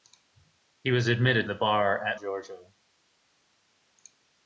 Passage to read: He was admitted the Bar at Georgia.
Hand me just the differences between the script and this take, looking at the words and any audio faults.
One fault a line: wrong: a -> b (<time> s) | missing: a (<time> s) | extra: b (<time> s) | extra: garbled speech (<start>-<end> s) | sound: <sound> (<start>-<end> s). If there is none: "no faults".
no faults